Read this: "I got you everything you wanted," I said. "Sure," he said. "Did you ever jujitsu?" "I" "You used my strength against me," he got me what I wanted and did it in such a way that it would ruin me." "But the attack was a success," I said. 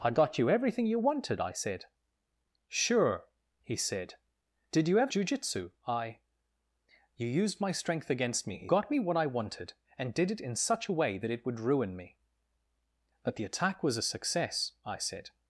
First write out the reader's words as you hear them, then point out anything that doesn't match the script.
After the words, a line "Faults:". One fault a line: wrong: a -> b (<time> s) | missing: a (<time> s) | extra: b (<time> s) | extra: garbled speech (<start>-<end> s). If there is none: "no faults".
"I got you everything you wanted," I said. "Sure," he said. "Did you ever jujitsu?" "I" "You used my strength against me," he got me what I wanted and did it in such a way that it would ruin me." "But the attack was a success," I said.
Faults:
no faults